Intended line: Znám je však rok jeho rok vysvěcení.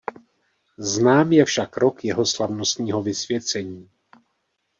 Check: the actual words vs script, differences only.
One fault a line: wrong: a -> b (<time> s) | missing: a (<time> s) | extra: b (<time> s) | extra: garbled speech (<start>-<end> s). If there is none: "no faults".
wrong: rok -> slavnostního (2.2 s)